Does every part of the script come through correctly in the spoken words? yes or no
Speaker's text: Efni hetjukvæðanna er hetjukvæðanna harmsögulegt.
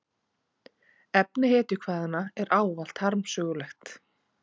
no